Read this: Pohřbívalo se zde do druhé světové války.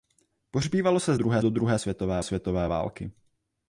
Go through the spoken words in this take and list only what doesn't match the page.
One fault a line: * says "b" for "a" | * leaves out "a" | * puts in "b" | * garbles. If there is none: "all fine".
* says "druhé" for "zde"
* puts in "světové"